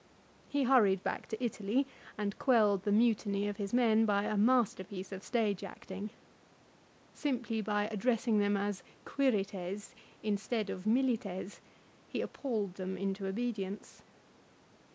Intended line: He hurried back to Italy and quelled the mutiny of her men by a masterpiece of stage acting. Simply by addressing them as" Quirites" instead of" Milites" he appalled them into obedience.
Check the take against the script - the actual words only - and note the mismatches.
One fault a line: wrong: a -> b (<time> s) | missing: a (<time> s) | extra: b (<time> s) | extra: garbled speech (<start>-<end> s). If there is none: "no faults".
wrong: her -> his (3.6 s)